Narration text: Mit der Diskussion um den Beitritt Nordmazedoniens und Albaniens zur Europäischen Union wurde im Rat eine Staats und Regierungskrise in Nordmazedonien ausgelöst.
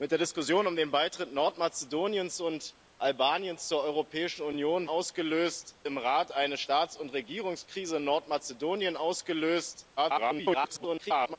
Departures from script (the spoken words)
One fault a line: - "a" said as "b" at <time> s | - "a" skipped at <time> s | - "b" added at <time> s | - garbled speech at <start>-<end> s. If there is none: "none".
- "wurde" said as "ausgelöst" at 4.8 s
- garbled speech at 10.0-11.4 s